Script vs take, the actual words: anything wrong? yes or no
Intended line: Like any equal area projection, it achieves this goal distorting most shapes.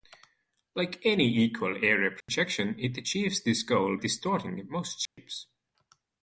no